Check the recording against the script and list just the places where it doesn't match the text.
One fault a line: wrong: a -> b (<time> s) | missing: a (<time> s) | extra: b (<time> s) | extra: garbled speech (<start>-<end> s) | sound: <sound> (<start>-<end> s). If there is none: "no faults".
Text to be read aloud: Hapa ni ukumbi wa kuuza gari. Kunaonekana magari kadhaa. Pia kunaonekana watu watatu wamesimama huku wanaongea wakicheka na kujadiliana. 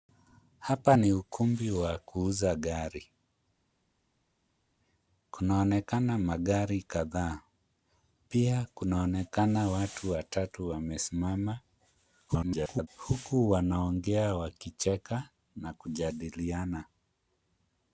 extra: garbled speech (12.3-12.9 s)